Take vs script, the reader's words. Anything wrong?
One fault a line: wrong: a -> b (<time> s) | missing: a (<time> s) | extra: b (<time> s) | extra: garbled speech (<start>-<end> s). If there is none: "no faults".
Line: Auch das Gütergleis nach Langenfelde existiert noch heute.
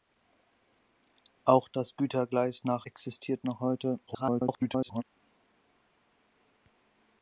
missing: Langenfelde (2.9 s)
extra: garbled speech (4.1-5.0 s)